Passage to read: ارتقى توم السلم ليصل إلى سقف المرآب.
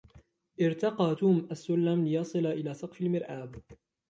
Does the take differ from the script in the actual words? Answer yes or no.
no